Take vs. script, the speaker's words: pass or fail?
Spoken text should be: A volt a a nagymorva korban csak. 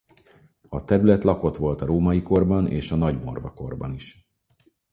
fail